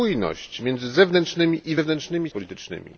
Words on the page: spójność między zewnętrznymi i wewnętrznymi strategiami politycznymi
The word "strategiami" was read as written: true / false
false